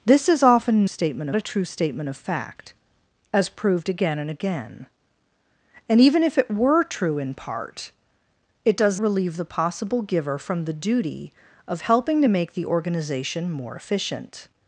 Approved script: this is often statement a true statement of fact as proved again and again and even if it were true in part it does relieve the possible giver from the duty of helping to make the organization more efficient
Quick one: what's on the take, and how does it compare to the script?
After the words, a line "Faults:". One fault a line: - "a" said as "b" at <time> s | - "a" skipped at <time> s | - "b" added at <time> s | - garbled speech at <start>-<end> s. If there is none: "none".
this is often statement a true statement of fact as proved again and again and even if it were true in part it does relieve the possible giver from the duty of helping to make the organization more efficient
Faults:
none